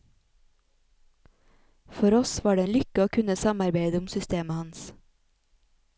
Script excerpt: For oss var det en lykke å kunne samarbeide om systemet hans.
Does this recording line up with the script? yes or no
yes